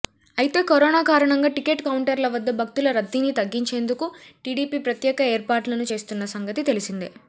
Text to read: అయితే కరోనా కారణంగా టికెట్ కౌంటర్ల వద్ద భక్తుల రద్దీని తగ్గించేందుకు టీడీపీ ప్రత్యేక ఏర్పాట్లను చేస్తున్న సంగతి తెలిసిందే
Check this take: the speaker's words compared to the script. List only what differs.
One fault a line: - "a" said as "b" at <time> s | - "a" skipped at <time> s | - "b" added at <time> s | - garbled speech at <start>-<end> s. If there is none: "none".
none